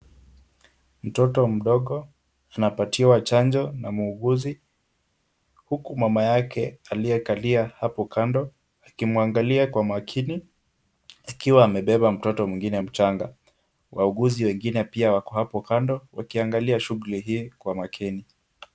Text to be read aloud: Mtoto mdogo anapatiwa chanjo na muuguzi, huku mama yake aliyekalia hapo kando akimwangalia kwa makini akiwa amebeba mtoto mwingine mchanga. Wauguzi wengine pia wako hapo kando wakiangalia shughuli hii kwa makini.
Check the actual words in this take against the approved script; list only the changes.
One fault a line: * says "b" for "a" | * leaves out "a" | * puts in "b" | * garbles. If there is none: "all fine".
all fine